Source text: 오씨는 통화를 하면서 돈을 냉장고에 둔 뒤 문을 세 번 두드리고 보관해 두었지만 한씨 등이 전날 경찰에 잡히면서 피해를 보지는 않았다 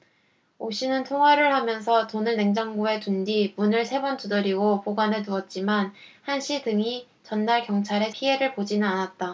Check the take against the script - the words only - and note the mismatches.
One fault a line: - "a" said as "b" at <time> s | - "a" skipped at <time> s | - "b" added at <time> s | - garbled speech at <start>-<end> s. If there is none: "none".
- "잡히면서" skipped at 8.1 s